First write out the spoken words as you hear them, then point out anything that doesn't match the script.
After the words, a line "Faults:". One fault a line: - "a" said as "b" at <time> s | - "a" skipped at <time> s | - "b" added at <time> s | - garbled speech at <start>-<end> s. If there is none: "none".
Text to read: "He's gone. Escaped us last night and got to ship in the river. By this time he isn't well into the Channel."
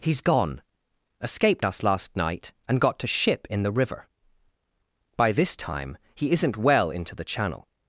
"He's gone. Escaped us last night and got to ship in the river. By this time he isn't well into the Channel."
Faults:
none